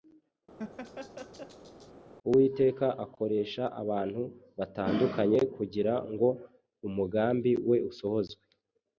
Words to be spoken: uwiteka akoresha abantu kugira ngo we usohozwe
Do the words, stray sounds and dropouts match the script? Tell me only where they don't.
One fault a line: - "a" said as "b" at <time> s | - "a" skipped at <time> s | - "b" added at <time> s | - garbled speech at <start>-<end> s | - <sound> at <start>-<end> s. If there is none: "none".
- laugh at 0.6-1.9 s
- "batandukanye" added at 4.6 s
- "umugambi" added at 6.9 s